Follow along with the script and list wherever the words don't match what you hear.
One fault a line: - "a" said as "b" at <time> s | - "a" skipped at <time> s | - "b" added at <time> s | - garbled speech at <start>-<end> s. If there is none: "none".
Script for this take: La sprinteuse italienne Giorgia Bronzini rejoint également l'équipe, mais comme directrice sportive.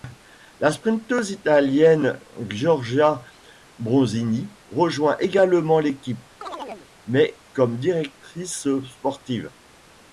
none